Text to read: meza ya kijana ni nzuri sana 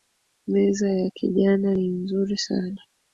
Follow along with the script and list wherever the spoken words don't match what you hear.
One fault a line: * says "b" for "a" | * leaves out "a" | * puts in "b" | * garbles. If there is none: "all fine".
all fine